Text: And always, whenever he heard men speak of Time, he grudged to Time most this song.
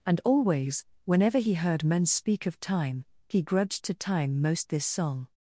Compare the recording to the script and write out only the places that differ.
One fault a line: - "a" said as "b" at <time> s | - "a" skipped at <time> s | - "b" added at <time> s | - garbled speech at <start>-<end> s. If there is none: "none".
none